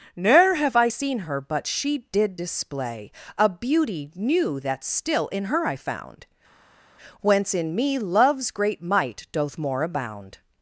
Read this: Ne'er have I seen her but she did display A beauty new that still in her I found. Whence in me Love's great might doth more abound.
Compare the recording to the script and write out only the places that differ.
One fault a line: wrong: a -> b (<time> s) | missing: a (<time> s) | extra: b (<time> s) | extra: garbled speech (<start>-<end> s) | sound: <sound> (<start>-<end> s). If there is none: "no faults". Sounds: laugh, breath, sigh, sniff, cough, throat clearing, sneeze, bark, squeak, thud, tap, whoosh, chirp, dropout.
no faults